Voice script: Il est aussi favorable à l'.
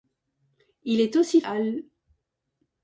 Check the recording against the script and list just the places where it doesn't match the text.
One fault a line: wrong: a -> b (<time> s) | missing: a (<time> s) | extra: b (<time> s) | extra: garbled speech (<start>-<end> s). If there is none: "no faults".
missing: favorable (1.4 s)